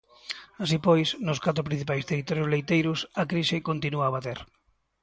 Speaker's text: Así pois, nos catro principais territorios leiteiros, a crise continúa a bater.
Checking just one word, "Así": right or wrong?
right